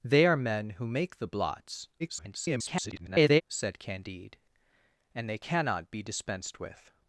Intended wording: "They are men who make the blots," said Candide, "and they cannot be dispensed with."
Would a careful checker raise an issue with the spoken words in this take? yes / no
yes